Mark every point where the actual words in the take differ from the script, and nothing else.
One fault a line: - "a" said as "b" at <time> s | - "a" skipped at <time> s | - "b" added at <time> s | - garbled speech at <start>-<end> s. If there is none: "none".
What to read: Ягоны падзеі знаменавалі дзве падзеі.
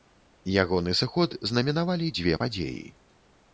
- "падзеі" said as "сыход" at 1.0 s